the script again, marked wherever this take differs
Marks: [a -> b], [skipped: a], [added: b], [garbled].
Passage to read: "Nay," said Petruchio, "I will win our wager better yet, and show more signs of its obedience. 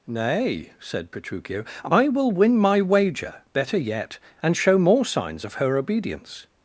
"Nay," said Petruchio, "I will win [our -> my] wager better yet, and show more signs of [its -> her] obedience.